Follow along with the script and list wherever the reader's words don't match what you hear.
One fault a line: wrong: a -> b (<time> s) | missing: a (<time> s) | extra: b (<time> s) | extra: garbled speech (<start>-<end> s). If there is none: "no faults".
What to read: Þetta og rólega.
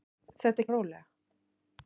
no faults